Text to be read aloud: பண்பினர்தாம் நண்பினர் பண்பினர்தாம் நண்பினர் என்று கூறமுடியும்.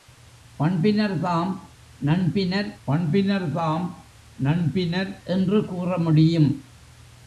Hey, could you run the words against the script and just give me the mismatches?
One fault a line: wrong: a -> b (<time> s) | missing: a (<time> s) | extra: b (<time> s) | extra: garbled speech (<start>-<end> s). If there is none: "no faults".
no faults